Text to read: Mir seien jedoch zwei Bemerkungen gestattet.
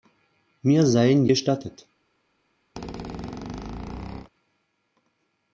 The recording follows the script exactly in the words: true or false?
false